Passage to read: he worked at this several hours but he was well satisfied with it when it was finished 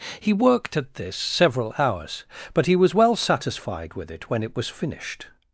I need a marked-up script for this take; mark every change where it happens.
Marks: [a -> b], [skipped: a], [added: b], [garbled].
he worked at this several hours but he was well satisfied with it when it was finished